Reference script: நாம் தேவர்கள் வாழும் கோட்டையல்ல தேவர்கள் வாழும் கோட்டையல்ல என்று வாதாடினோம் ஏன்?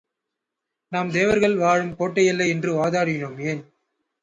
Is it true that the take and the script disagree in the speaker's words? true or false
true